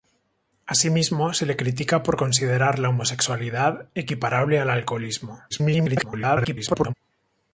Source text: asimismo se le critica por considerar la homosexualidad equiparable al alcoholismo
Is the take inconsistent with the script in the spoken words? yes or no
yes